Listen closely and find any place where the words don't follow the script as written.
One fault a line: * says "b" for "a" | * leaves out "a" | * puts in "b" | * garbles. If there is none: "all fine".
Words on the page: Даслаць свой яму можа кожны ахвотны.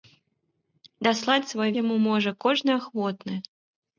all fine